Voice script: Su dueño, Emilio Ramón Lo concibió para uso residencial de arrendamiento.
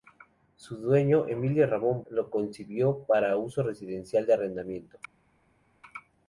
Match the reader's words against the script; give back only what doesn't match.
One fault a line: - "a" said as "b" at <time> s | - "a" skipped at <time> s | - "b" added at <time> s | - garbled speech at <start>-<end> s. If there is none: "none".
none